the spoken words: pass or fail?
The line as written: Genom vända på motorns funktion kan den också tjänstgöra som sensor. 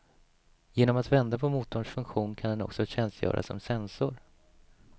fail